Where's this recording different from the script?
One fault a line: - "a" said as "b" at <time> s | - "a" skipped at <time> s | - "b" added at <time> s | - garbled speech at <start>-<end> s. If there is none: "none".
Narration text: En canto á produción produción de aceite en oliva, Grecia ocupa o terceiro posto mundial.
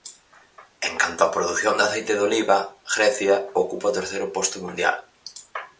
- "produción" skipped at 1.7 s
- "en" said as "de" at 2.1 s